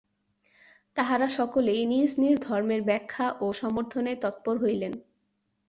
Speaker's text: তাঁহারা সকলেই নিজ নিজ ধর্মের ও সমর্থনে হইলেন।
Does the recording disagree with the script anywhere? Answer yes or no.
yes